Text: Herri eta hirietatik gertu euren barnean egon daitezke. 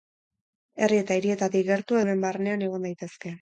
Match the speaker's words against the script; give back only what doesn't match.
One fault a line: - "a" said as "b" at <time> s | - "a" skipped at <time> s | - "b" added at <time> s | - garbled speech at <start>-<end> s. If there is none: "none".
none